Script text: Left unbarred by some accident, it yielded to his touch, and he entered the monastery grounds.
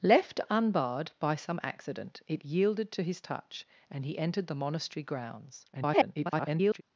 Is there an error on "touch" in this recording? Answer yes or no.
no